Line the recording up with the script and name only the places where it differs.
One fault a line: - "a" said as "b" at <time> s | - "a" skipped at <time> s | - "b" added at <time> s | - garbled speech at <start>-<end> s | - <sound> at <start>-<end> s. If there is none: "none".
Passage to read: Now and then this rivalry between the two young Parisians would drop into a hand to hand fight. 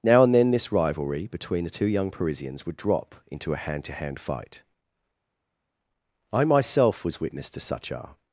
- "I myself was witness to such a" added at 6.3 s